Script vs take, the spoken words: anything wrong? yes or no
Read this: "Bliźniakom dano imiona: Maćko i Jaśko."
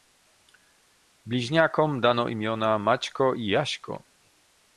no